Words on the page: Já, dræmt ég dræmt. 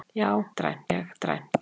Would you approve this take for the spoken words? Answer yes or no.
yes